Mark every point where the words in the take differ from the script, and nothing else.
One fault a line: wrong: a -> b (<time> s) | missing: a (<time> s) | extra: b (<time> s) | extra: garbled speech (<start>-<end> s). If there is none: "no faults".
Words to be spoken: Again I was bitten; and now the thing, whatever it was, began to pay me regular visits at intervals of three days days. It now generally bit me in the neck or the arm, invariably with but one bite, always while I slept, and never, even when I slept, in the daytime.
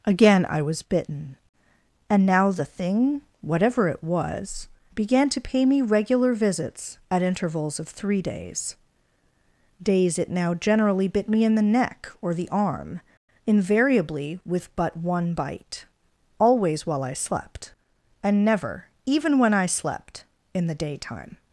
no faults